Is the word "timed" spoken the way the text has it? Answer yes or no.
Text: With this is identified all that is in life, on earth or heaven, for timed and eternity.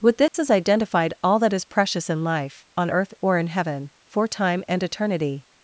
no